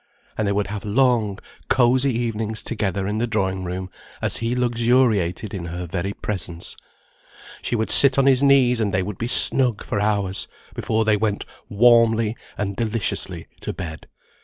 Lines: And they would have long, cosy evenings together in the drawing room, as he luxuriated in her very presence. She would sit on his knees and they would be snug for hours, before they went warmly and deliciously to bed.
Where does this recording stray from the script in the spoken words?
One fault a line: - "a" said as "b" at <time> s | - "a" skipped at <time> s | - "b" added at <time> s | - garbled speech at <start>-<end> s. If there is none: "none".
none